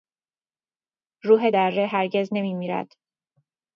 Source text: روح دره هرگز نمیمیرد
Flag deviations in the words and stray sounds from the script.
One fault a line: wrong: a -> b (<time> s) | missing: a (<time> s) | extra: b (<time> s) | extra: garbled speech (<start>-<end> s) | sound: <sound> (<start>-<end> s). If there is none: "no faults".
no faults